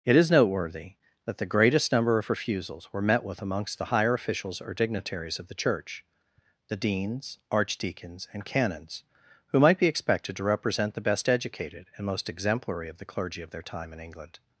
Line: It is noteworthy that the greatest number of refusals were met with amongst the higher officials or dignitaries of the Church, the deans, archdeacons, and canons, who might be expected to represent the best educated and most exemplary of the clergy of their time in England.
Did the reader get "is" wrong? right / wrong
right